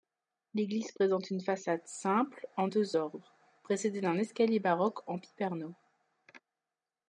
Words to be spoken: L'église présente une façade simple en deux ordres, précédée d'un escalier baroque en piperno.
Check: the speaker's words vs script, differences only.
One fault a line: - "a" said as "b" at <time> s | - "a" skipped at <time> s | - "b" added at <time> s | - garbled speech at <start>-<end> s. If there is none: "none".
none